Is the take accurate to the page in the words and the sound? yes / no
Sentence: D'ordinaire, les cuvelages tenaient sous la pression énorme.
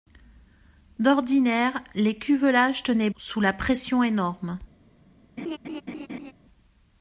no